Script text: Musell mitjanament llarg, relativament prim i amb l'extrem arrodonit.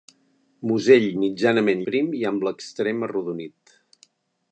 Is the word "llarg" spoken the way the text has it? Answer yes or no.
no